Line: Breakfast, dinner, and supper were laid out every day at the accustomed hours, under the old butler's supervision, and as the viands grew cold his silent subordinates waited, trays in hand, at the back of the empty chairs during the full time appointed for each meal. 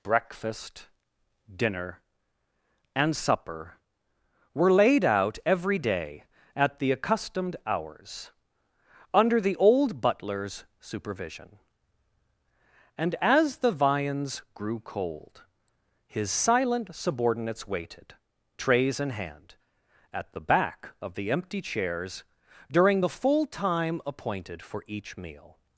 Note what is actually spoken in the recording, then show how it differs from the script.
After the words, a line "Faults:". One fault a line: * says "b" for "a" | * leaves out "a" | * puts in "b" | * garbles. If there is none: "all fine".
Breakfast, dinner, and supper were laid out every day at the accustomed hours, under the old butler's supervision, and as the viands grew cold his silent subordinates waited, trays in hand, at the back of the empty chairs during the full time appointed for each meal.
Faults:
all fine